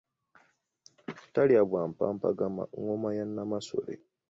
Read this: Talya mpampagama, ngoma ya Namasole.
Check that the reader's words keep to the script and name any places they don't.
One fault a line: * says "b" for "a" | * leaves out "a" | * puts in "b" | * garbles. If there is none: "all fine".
* puts in "bwa"